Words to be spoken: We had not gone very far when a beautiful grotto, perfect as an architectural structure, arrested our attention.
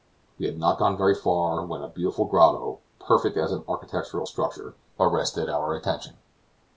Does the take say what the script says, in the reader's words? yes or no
yes